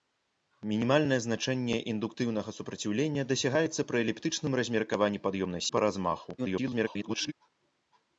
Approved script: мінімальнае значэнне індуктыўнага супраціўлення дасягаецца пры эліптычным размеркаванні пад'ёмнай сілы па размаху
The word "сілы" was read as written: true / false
false